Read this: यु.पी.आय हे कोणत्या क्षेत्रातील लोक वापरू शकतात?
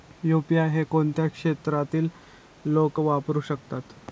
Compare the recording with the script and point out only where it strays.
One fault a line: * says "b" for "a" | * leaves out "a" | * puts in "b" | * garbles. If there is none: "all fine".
all fine